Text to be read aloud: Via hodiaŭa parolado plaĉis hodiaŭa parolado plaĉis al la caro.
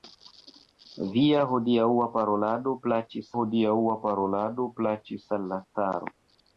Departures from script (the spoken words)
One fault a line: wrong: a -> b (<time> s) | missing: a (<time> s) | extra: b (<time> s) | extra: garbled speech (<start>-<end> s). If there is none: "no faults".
no faults